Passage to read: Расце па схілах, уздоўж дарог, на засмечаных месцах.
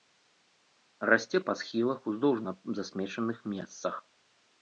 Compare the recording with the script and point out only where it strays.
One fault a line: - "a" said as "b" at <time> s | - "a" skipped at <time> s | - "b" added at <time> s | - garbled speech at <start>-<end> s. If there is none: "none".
- "дарог" skipped at 2.4 s